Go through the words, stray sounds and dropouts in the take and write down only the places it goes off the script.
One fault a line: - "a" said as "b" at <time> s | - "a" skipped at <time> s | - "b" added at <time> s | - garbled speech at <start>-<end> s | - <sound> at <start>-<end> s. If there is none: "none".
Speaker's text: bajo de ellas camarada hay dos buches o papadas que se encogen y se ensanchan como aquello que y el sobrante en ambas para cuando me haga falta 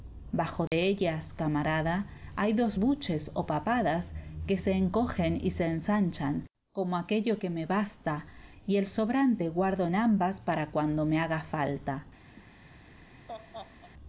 - dropout at 0.7-0.7 s
- "me basta" added at 7.5 s
- "guardo" added at 9.5 s
- laugh at 12.4-13.9 s